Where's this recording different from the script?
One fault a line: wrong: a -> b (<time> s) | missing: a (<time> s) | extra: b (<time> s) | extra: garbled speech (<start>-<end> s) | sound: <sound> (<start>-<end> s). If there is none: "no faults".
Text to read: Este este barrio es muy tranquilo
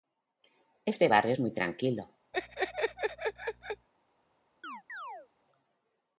missing: este (1.1 s)
sound: laugh (2.3-3.9 s)
sound: chirp (4.6-5.3 s)